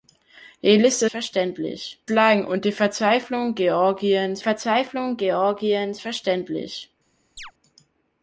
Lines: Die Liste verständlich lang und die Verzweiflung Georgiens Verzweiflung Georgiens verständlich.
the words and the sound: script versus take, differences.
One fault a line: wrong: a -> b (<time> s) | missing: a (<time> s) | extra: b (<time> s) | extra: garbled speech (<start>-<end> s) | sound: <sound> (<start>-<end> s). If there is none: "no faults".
sound: chirp (7.4-7.5 s)